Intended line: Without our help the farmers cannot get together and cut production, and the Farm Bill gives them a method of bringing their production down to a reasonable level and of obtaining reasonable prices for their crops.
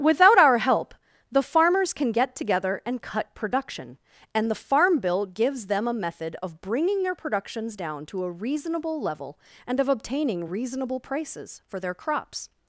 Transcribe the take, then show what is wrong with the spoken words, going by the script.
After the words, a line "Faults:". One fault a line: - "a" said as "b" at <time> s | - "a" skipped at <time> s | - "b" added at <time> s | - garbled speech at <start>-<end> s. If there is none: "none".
Without our help the farmers can get together and cut production, and the Farm Bill gives them a method of bringing their productions down to a reasonable level and of obtaining reasonable prices for their crops.
Faults:
- "cannot" said as "can" at 1.9 s
- "production" said as "productions" at 7.1 s